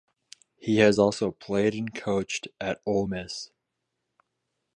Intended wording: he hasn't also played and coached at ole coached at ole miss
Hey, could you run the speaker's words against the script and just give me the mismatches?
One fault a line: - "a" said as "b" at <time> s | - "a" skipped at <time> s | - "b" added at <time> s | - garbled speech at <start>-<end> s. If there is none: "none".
- "hasn't" said as "has" at 0.8 s
- "coached at ole" skipped at 3.1 s